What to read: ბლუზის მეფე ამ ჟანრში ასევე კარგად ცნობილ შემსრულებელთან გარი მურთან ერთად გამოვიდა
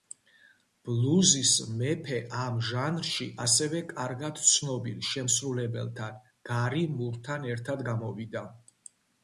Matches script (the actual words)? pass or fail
pass